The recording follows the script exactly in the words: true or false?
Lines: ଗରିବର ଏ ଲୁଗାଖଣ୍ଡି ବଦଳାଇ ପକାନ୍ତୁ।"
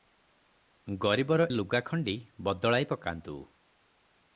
false